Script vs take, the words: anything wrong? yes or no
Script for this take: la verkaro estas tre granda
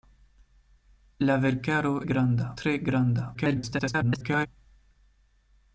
yes